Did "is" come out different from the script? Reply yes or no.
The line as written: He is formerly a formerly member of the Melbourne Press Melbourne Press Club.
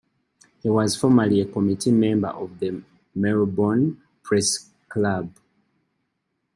yes